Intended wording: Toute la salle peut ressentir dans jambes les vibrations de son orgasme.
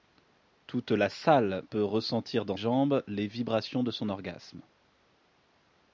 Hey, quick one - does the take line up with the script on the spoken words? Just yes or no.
yes